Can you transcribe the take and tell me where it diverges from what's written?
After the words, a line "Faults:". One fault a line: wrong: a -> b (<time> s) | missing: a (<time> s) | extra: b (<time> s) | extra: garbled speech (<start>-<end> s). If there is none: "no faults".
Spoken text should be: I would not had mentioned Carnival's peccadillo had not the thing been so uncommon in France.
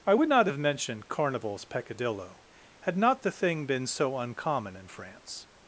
I would not have mentioned Carnival's peccadillo had not the thing been so uncommon in France.
Faults:
wrong: had -> have (0.5 s)